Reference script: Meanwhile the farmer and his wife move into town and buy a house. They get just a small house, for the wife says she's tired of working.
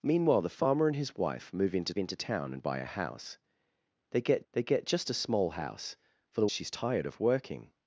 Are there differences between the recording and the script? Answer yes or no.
yes